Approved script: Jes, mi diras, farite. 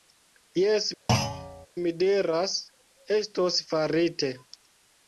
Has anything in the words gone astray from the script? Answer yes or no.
yes